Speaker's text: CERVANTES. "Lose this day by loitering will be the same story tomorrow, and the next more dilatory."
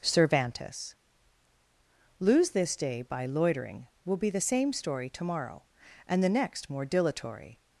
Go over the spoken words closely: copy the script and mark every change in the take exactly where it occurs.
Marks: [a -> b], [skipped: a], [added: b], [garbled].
CERVANTES. "Lose this day by loitering will be the same story tomorrow, and the next more dilatory."